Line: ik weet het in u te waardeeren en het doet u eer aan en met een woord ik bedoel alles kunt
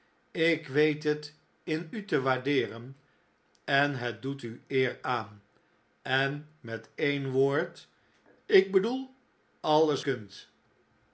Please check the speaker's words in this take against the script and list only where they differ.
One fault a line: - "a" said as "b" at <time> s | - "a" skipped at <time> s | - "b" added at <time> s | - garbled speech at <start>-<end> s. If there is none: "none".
none